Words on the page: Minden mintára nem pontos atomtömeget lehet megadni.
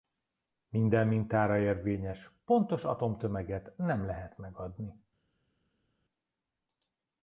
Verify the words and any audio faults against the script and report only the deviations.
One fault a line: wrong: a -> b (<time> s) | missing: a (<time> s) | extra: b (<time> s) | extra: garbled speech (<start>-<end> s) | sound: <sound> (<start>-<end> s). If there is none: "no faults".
wrong: nem -> érvényes (1.6 s)
extra: nem (3.8 s)